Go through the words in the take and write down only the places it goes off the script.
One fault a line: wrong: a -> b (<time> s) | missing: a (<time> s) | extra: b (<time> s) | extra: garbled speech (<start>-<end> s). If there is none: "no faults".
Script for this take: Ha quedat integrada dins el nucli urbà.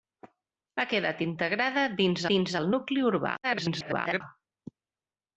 extra: dins (2.3 s)
extra: garbled speech (3.4-4.2 s)